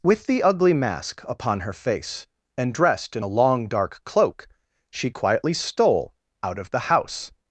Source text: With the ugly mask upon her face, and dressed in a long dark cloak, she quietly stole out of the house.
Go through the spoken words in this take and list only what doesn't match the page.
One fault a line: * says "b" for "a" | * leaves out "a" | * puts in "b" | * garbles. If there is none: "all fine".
all fine